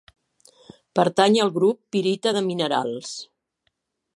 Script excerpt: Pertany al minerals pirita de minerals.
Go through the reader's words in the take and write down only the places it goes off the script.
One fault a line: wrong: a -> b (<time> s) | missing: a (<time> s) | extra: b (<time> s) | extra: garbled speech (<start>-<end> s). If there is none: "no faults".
wrong: minerals -> grup (1.6 s)